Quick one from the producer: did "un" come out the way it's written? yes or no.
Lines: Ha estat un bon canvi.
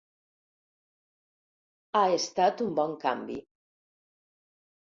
yes